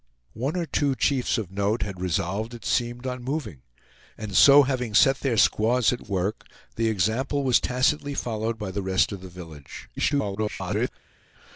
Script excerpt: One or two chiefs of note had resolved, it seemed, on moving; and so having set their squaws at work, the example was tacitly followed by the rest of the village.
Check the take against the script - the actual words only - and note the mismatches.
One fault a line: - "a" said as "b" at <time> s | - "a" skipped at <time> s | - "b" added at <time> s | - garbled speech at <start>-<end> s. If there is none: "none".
- garbled speech at 10.0-10.9 s